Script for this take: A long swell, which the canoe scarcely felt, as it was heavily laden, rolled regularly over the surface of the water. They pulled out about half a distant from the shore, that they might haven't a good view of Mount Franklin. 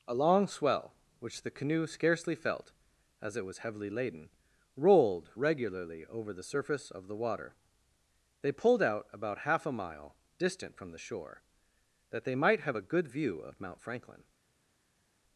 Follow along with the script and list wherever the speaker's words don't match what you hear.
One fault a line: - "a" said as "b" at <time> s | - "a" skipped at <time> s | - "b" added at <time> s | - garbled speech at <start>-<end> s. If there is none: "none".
- "mile" added at 9.7 s
- "haven't" said as "have" at 12.6 s